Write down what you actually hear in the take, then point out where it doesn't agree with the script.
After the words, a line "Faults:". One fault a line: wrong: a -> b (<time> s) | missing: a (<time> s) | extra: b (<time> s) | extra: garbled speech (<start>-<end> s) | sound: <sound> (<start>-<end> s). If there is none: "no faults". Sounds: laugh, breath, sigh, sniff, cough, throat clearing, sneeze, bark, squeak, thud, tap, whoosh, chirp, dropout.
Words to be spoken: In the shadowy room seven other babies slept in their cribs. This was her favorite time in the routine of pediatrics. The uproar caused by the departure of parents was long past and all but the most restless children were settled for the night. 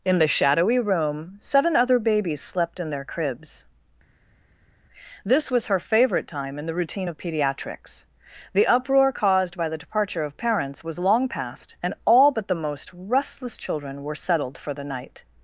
In the shadowy room seven other babies slept in their cribs. This was her favorite time in the routine of pediatrics. The uproar caused by the departure of parents was long past and all but the most restless children were settled for the night.
Faults:
no faults